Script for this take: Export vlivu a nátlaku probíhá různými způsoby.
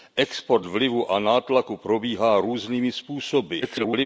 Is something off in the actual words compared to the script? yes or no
yes